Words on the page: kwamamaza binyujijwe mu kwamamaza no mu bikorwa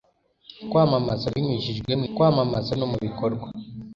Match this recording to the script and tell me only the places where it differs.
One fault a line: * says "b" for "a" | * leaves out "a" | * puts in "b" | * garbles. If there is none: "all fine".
all fine